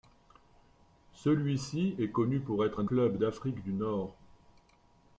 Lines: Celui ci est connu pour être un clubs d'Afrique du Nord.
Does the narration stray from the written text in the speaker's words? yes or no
no